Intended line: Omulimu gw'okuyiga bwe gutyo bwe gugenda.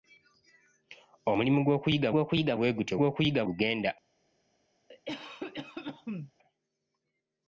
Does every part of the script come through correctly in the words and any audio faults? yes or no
no